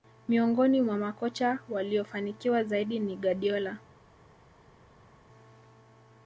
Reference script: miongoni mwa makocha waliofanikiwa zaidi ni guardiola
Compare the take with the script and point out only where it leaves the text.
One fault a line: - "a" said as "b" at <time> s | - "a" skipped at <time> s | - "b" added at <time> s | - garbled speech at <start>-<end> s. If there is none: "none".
none